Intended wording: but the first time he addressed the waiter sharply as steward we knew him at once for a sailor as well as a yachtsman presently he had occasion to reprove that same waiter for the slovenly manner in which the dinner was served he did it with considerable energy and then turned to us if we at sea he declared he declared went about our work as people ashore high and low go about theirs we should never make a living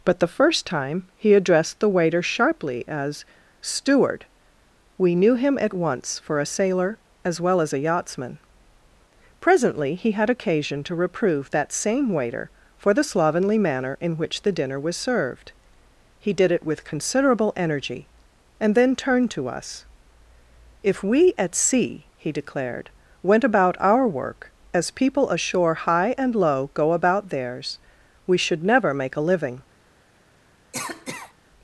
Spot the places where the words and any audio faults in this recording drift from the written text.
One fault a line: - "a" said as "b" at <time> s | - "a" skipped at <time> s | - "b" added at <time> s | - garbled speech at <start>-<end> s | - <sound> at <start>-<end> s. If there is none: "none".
- "he declared" skipped at 22.9 s
- cough at 30.7-31.3 s